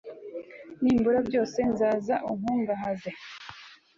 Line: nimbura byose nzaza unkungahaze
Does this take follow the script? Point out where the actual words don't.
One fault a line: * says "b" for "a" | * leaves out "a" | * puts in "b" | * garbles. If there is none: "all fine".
all fine